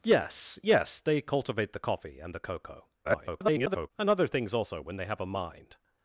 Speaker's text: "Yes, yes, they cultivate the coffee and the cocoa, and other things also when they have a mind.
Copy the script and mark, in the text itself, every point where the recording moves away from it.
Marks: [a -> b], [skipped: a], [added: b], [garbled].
"Yes, yes, they cultivate the coffee and the cocoa, [garbled] and other things also when they have a mind.